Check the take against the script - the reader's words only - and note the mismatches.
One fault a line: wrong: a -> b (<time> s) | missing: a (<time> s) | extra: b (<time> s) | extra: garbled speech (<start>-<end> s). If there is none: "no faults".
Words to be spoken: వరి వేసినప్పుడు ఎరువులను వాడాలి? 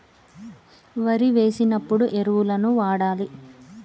no faults